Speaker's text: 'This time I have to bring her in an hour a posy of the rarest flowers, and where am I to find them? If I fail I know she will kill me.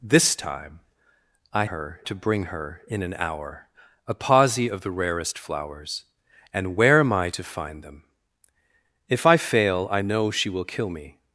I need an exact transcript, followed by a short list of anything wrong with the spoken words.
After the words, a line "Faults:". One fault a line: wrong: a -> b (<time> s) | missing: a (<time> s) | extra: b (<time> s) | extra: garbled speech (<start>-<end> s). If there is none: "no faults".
'This time I her to bring her in an hour a posy of the rarest flowers, and where am I to find them? If I fail I know she will kill me.
Faults:
wrong: have -> her (1.6 s)